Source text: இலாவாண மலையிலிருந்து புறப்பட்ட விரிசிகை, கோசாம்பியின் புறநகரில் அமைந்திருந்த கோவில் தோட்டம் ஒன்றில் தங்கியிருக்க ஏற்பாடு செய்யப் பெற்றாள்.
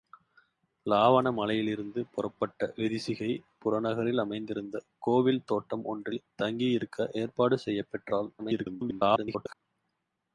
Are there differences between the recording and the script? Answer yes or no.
yes